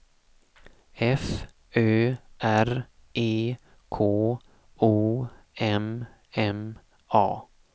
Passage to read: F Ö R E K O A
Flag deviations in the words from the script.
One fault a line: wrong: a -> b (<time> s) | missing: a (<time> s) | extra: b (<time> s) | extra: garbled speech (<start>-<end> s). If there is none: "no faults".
extra: M M (5.6 s)